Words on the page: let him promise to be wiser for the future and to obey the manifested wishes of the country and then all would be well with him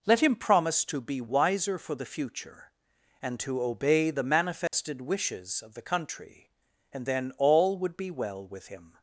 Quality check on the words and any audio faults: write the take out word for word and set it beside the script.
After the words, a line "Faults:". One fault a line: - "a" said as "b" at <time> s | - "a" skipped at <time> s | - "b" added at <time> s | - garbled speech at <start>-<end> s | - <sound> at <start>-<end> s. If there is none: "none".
let him promise to be wiser for the future and to obey the manifested wishes of the country and then all would be well with him
Faults:
- dropout at 4.7-4.7 s